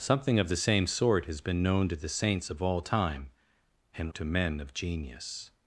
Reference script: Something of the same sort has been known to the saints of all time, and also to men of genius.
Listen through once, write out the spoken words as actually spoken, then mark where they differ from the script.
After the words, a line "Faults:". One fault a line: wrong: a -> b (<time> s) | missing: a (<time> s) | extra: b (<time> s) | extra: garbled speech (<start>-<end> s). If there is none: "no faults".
Something of the same sort has been known to the saints of all time, and to men of genius.
Faults:
missing: also (4.1 s)